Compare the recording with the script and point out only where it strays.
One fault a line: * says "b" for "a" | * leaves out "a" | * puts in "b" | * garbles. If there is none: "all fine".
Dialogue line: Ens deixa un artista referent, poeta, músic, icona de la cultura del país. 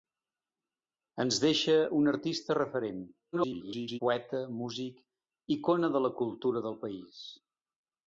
* garbles